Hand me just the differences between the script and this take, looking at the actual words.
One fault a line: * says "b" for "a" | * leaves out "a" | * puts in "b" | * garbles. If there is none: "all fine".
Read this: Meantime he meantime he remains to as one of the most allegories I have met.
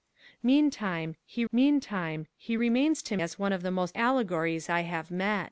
all fine